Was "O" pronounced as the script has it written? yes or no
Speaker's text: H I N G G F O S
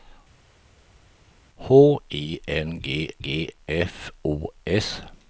yes